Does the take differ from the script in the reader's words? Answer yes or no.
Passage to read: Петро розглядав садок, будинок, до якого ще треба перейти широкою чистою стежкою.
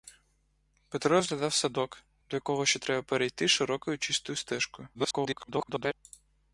yes